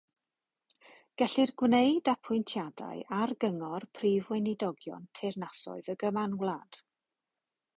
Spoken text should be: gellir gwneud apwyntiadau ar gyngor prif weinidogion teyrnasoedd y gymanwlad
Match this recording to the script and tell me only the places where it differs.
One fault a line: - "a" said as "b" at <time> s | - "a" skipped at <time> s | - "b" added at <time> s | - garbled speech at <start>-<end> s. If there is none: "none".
none